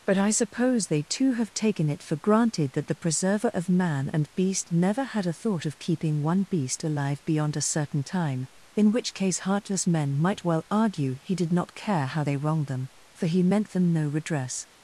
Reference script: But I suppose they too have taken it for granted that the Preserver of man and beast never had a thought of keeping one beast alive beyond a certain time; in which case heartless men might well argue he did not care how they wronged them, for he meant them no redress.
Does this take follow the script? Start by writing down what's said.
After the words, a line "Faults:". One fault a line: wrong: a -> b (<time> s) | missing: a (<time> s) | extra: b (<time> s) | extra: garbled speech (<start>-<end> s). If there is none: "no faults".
But I suppose they too have taken it for granted that the Preserver of man and beast never had a thought of keeping one beast alive beyond a certain time; in which case heartless men might well argue he did not care how they wronged them, for he meant them no redress.
Faults:
no faults